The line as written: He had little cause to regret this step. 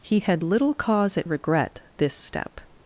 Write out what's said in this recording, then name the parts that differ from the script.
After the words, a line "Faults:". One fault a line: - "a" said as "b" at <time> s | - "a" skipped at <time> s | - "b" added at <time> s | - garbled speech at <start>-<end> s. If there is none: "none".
He had little cause at regret this step.
Faults:
- "to" said as "at" at 1.2 s